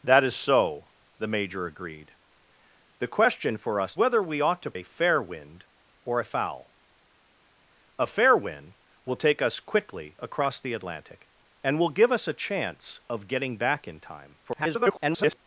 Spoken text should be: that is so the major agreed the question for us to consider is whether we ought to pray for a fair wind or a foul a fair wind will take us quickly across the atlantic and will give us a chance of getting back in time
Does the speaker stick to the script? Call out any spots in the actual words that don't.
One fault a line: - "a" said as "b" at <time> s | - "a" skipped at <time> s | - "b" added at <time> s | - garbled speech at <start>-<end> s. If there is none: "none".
- "to consider is" skipped at 3.9 s
- "pray for" skipped at 4.8 s
- garbled speech at 14.4-15.4 s